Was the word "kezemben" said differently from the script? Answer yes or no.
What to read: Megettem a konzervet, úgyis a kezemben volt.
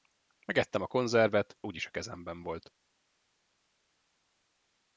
no